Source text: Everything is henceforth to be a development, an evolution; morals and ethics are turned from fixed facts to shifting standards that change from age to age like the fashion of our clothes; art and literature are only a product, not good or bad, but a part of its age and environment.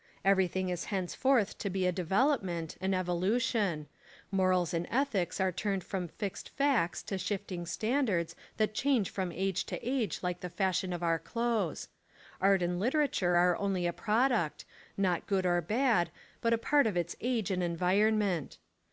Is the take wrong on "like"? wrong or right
right